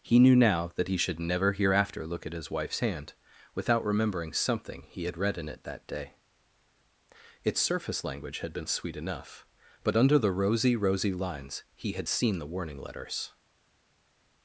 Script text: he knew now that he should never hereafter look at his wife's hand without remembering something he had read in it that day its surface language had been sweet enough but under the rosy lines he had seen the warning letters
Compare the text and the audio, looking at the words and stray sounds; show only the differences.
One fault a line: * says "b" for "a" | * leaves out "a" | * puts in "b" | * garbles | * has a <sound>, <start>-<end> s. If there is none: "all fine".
* puts in "rosy"